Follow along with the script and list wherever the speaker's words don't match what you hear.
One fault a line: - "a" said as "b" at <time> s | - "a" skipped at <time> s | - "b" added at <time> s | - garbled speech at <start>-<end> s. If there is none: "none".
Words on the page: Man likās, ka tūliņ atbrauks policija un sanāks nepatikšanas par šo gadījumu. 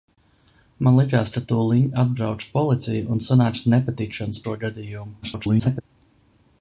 - "par" skipped at 4.4 s
- garbled speech at 5.2-5.8 s